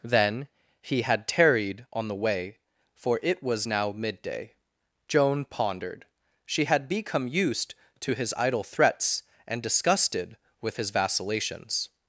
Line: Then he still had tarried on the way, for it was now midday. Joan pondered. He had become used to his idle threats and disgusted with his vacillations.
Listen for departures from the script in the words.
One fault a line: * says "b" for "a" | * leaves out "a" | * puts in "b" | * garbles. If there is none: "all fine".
* leaves out "still"
* says "She" for "He"